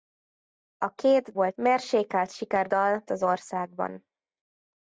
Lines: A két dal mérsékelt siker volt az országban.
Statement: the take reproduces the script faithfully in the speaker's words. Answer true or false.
false